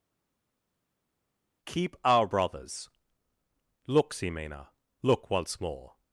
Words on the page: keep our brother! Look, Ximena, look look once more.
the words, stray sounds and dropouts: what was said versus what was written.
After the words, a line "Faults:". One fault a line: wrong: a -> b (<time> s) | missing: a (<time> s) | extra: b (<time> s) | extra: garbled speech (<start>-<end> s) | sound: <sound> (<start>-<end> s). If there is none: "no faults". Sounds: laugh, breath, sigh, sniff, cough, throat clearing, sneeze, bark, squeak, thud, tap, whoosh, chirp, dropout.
keep our brothers! Look, Ximena, look once more.
Faults:
wrong: brother -> brothers (2.3 s)
missing: look (5.3 s)